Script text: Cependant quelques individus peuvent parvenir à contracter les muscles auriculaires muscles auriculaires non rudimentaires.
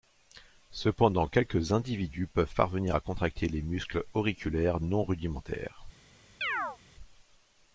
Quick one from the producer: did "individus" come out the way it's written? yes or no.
yes